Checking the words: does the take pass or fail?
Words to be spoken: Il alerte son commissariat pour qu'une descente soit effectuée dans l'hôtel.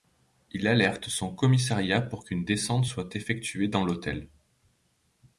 pass